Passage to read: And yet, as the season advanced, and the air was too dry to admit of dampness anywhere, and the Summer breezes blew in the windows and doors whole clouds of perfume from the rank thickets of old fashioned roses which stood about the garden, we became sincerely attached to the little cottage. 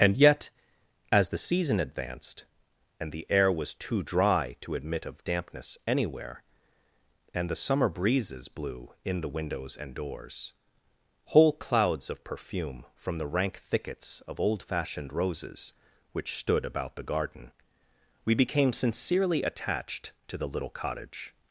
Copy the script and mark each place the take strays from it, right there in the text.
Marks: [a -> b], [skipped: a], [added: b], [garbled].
And yet, as the season advanced, and the air was too dry to admit of dampness anywhere, and the Summer breezes blew in the windows and doors whole clouds of perfume from the rank thickets of old fashioned roses which stood about the garden, we became sincerely attached to the little cottage.